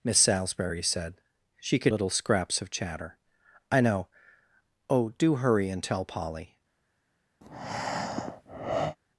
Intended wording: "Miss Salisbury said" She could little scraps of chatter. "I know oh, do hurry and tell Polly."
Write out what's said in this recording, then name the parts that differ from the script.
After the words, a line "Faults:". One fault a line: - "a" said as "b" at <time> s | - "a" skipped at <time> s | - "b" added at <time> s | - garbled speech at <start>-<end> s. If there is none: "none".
"Miss Salisbury said" She could little scraps of chatter. "I know oh, do hurry and tell Polly."
Faults:
none